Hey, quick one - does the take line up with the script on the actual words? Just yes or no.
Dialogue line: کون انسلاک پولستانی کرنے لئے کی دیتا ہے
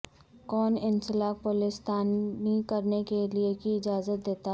no